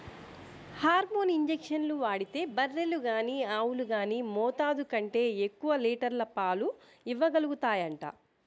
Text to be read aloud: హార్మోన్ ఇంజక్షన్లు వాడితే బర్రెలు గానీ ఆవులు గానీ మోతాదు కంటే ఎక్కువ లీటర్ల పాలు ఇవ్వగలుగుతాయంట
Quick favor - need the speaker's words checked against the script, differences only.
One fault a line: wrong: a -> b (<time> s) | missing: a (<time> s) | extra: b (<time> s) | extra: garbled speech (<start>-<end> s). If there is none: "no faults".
no faults